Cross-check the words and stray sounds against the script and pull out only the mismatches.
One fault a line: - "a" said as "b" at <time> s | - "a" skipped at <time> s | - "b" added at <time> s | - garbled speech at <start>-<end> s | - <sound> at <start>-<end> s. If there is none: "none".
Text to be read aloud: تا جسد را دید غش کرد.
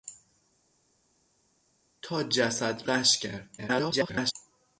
- "را دید" skipped at 2.9 s
- garbled speech at 3.6-4.3 s